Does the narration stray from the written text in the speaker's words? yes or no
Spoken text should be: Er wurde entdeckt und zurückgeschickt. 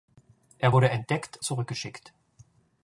yes